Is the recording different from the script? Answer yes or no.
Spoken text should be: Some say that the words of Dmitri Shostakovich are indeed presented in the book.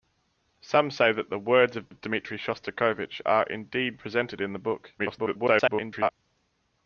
yes